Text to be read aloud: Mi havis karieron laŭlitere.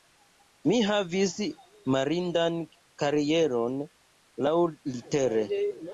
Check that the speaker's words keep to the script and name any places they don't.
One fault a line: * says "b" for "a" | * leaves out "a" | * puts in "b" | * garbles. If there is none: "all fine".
* puts in "mirindan"